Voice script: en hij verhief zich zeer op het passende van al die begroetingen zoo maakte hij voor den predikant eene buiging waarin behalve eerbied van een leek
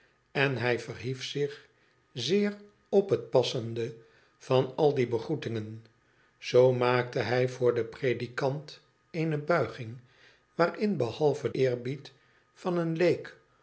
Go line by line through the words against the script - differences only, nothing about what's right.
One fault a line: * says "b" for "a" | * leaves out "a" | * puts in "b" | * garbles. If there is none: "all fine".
all fine